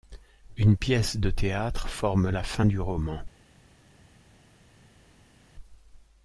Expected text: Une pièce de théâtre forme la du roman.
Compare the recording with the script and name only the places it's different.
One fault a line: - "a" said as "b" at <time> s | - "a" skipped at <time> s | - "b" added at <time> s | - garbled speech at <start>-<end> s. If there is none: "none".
- "fin" added at 2.4 s